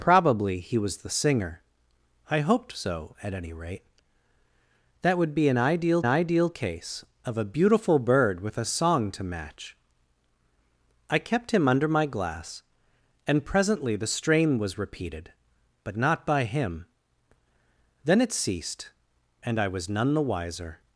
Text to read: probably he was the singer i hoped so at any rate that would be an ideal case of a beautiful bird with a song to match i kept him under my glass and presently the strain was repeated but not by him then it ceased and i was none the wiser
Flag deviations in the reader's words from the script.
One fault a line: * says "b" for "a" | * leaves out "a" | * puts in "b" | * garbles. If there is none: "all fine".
* puts in "ideal"